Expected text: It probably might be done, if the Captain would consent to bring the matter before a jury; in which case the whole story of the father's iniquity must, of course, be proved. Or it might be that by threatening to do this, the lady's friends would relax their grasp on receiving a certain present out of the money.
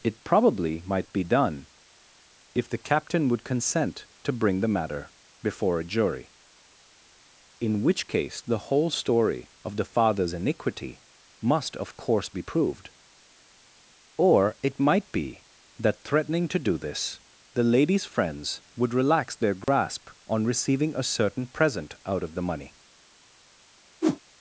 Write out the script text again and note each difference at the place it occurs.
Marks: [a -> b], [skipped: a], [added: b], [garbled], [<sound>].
It probably might be done, if the Captain would consent to bring the matter before a jury; in which case the whole story of the father's iniquity must, of course, be proved. Or it might be that [skipped: by] threatening to do this, the lady's friends would relax their grasp [dropout] on receiving a certain present out of the money. [whoosh]